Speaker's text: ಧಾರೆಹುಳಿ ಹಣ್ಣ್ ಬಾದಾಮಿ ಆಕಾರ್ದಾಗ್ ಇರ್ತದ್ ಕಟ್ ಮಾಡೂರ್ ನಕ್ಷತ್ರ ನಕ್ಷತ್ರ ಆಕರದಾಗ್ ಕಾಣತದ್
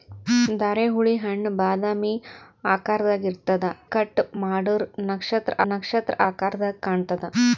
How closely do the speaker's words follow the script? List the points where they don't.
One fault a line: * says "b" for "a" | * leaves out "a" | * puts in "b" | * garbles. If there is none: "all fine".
all fine